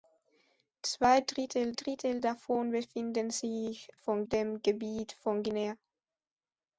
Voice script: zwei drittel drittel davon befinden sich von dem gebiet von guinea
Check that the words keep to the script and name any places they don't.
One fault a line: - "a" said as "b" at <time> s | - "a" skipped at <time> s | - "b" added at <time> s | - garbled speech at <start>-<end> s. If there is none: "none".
none